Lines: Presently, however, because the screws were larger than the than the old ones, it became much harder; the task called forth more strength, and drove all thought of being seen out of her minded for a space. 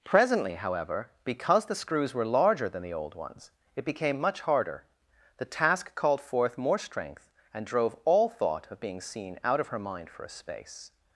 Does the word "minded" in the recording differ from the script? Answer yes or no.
yes